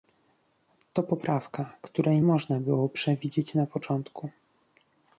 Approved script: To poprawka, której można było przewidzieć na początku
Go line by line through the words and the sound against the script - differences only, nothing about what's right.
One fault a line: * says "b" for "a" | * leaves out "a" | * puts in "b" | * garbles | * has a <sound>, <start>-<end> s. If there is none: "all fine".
all fine